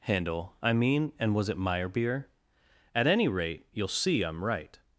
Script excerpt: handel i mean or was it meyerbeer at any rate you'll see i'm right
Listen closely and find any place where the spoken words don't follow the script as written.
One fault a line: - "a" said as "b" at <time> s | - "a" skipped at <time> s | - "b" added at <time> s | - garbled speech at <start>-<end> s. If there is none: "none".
- "or" said as "and" at 1.2 s